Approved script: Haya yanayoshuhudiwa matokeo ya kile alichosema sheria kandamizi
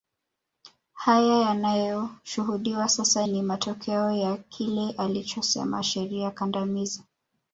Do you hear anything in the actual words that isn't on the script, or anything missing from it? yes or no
yes